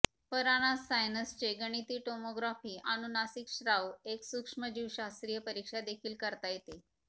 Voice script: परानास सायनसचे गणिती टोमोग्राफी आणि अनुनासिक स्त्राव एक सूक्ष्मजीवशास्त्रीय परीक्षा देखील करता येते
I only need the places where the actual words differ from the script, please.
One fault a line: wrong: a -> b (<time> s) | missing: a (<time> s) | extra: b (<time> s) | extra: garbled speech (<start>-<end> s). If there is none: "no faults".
missing: आणि (2.8 s)